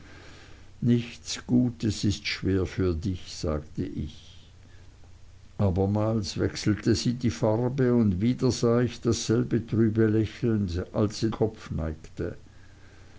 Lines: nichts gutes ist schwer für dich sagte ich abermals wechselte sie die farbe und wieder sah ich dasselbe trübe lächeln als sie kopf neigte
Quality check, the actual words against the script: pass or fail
pass